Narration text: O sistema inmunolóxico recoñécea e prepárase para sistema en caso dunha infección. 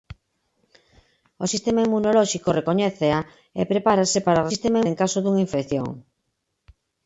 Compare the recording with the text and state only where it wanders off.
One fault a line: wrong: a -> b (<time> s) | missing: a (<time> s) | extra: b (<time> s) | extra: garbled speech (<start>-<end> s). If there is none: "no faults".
no faults